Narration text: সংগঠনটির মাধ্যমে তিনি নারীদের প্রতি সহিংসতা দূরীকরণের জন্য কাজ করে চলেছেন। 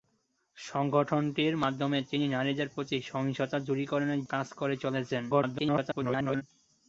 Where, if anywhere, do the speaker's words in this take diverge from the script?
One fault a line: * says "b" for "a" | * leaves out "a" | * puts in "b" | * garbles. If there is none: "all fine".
* leaves out "জন্য"
* garbles